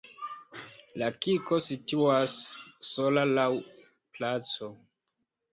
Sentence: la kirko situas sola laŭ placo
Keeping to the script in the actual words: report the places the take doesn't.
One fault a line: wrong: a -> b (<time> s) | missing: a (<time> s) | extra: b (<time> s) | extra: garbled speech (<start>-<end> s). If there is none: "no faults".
no faults